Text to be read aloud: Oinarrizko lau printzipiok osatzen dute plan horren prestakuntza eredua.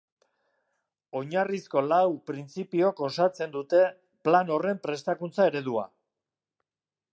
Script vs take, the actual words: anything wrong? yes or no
no